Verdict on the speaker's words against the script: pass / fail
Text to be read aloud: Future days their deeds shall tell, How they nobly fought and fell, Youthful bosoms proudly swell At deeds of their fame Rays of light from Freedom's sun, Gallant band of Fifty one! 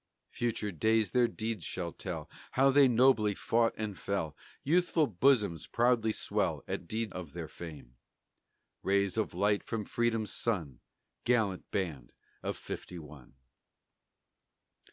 pass